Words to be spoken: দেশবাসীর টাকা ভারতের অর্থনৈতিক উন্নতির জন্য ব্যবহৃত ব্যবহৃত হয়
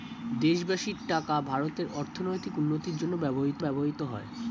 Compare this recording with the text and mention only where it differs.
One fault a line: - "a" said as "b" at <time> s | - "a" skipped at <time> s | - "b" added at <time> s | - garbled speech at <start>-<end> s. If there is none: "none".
none